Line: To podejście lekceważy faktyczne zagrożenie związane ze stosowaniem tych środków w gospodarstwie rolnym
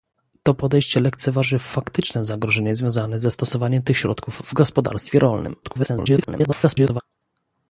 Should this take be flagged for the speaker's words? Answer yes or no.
yes